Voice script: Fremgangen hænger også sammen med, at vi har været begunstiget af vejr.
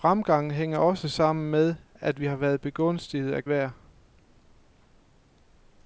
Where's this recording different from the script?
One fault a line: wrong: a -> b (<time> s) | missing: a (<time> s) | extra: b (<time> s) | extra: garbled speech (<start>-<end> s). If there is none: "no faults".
no faults